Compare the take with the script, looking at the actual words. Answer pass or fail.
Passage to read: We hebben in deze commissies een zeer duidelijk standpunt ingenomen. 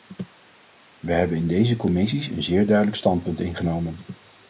pass